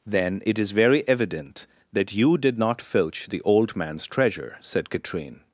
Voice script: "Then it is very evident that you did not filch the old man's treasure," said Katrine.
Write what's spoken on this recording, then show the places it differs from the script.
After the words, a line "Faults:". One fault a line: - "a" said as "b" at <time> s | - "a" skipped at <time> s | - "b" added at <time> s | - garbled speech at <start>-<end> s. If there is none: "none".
"Then it is very evident that you did not filch the old man's treasure," said Katrine.
Faults:
none